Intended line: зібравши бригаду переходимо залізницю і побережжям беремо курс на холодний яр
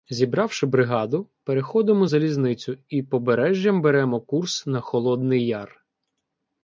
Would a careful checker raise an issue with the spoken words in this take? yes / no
no